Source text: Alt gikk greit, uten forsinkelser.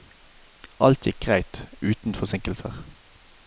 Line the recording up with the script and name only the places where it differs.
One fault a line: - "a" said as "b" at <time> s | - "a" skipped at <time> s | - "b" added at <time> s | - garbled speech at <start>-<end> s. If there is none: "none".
none